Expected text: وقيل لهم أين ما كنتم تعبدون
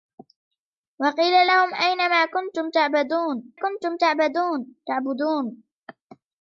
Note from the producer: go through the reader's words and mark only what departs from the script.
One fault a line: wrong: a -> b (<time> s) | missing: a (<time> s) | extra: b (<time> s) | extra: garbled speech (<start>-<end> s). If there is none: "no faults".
extra: كنتم (3.5 s)